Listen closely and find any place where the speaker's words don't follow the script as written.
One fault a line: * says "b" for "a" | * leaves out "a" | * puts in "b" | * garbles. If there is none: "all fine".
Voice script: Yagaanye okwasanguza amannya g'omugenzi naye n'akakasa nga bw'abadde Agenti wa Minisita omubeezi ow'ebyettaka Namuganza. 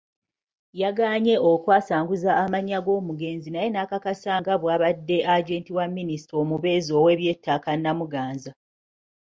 all fine